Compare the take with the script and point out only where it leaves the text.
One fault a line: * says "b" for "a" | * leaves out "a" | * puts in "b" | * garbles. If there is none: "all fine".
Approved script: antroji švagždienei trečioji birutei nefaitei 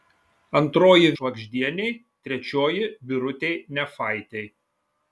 all fine